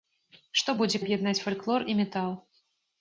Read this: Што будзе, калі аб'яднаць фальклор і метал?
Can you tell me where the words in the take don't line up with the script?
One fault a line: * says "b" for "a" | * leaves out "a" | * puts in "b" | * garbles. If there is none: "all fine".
* leaves out "калі"